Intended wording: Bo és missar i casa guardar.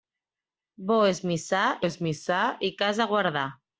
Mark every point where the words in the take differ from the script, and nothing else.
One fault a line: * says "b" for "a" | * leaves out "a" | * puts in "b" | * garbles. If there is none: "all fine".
* puts in "és missar"